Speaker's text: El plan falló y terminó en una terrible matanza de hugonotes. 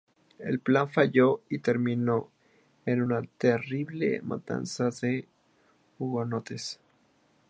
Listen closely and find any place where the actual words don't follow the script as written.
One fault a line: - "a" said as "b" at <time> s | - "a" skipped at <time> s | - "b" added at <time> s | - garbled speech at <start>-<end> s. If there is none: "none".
none